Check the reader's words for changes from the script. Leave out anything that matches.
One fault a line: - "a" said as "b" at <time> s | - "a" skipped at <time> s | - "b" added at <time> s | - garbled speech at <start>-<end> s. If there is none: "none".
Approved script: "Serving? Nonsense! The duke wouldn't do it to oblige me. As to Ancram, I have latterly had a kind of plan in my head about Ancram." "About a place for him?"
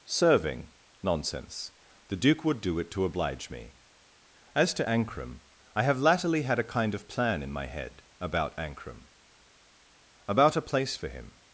- "wouldn't" said as "would" at 2.4 s